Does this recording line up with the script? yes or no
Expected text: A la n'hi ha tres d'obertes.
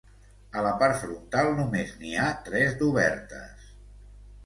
no